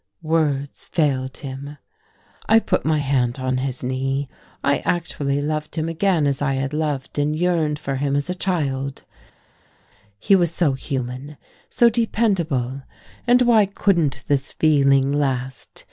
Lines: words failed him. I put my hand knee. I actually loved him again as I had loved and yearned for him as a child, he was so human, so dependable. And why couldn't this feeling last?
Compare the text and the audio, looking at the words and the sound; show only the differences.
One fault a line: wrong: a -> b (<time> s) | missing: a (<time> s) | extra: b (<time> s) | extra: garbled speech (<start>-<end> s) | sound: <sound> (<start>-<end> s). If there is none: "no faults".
extra: on his (3.4 s)